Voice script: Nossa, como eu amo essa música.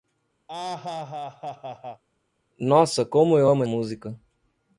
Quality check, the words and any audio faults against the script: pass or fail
fail